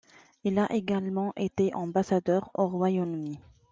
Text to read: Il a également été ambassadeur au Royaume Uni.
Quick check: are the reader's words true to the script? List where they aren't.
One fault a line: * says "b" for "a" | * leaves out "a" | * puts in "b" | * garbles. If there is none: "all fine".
all fine